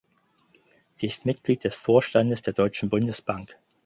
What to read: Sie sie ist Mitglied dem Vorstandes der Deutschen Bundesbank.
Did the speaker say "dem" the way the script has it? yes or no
no